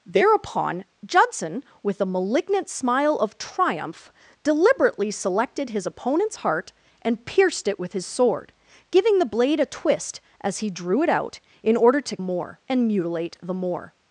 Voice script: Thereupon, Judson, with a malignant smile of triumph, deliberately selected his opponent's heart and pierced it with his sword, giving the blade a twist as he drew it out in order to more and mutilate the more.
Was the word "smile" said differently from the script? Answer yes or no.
no